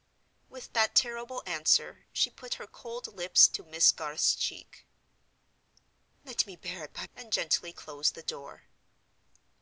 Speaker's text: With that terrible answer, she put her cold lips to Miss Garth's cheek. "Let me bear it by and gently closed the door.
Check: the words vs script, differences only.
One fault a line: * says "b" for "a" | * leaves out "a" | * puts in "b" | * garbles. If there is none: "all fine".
all fine